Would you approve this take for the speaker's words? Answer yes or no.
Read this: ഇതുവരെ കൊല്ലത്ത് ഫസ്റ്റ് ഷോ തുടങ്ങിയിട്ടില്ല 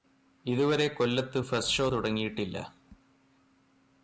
yes